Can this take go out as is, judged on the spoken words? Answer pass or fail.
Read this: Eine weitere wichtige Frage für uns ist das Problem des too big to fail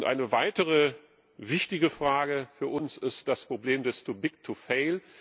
pass